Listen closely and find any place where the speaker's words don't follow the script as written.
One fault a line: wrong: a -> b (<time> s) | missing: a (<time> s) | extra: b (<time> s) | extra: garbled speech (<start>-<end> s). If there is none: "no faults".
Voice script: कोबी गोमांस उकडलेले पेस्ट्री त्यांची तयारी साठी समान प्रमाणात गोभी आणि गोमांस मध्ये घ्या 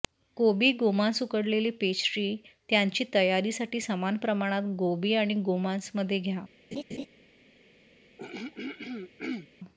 no faults